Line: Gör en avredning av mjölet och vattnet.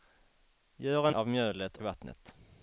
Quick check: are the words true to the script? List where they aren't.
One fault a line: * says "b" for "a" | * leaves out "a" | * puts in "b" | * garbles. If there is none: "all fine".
* leaves out "avredning"
* leaves out "och"